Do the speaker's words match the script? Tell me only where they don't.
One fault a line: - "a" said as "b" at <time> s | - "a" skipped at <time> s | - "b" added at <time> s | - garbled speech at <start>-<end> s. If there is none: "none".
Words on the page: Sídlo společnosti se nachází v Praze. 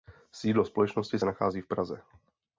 none